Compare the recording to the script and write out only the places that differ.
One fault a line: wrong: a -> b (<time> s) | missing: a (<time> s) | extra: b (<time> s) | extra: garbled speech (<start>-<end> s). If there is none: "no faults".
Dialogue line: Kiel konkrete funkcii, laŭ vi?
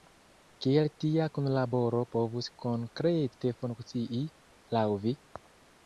extra: tia kunlaboro povus (1.0 s)